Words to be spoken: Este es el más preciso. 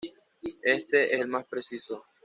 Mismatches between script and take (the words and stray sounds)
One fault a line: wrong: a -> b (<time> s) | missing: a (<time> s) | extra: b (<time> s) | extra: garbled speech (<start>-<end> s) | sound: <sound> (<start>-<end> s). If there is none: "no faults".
no faults